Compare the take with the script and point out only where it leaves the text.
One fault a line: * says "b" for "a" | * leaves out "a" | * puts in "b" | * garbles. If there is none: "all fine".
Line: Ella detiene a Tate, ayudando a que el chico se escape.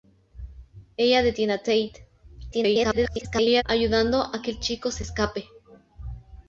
* garbles